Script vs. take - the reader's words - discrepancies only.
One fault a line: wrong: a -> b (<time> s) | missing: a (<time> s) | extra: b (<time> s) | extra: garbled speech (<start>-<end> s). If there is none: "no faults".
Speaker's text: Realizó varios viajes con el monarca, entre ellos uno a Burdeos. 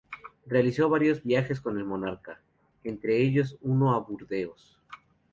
no faults